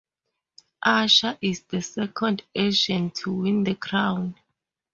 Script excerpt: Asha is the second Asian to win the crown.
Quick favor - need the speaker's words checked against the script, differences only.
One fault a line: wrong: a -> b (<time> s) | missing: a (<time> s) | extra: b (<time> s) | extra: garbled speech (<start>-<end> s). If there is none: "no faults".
no faults